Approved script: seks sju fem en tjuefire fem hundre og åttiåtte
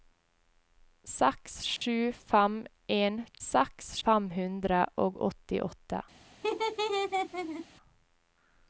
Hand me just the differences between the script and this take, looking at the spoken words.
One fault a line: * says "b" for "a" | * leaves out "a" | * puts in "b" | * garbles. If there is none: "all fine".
* says "seks" for "tjuefire"